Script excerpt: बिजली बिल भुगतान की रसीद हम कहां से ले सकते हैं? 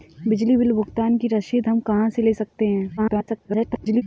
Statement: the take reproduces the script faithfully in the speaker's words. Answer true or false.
false